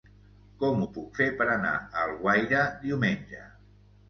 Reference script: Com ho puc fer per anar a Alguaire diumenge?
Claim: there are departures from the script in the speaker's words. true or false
false